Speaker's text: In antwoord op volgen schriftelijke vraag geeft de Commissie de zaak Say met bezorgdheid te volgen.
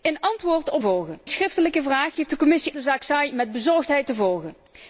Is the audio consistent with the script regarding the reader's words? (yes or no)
yes